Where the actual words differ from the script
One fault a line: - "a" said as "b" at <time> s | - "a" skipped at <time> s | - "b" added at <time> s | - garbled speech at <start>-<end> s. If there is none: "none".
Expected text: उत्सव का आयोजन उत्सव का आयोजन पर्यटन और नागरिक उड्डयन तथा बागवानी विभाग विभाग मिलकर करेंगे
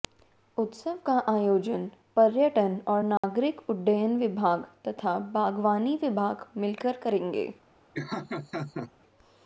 - "उत्सव का आयोजन" skipped at 1.9 s
- "विभाग" added at 4.2 s
- "विभाग" skipped at 6.5 s